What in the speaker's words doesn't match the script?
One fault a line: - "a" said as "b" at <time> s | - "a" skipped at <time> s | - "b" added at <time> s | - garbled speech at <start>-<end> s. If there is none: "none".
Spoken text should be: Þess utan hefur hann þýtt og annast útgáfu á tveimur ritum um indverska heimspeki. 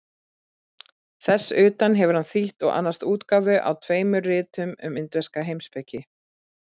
none